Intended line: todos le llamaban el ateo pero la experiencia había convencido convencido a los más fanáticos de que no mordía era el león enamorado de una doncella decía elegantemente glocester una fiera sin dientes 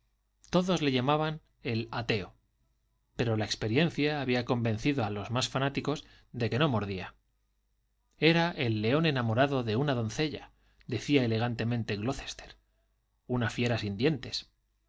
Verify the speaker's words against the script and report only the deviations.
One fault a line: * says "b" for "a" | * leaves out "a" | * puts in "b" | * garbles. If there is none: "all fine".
* leaves out "convencido"